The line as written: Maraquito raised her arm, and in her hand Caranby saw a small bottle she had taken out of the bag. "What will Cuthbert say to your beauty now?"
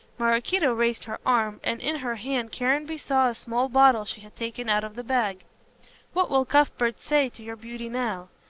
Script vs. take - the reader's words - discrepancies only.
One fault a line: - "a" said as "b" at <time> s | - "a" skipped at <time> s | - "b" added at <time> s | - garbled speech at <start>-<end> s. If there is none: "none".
none